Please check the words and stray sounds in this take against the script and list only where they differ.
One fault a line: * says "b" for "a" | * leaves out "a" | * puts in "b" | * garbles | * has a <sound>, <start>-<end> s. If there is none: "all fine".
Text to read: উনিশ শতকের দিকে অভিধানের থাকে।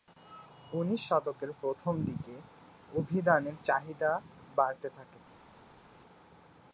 * puts in "প্রথম"
* puts in "চাহিদা বাড়তে"